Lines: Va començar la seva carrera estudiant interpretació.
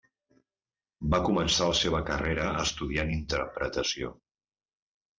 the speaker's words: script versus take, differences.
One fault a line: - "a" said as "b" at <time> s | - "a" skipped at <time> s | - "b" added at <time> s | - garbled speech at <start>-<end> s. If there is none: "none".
none